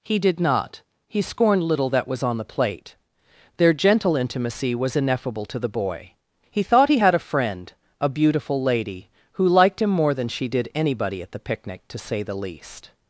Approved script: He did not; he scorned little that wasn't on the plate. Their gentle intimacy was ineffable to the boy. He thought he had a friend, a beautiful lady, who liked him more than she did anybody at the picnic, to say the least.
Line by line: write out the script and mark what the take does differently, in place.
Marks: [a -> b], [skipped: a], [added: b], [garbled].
He did not; he scorned little that [wasn't -> was] on the plate. Their gentle intimacy was ineffable to the boy. He thought he had a friend, a beautiful lady, who liked him more than she did anybody at the picnic, to say the least.